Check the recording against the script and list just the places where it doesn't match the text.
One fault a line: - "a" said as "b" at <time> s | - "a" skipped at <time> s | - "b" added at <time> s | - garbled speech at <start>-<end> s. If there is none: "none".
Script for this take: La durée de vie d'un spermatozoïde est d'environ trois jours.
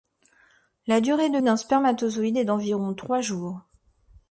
- "vie" skipped at 1.4 s